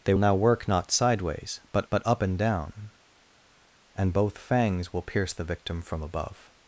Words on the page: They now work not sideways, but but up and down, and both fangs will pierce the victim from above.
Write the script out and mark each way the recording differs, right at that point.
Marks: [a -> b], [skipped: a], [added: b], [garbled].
They now work not sideways, but but up and down, and both fangs will pierce the victim from above.